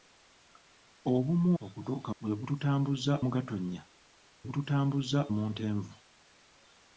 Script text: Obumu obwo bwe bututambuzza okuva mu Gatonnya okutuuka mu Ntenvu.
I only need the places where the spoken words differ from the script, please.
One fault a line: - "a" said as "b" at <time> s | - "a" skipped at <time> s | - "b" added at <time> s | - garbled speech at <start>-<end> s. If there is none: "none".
- "obwo" said as "okutuuka" at 1.6 s
- "okuva" skipped at 3.1 s
- "okutuuka" said as "bututambuzza" at 4.4 s